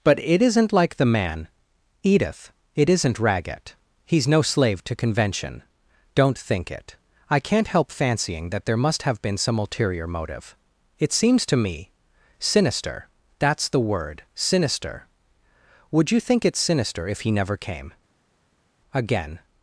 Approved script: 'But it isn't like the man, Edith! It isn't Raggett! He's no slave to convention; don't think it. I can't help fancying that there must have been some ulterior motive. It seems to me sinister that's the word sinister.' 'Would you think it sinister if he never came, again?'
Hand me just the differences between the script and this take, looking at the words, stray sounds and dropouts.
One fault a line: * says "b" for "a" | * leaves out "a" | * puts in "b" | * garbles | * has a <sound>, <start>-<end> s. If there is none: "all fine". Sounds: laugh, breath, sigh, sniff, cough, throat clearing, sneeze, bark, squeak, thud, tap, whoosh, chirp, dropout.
all fine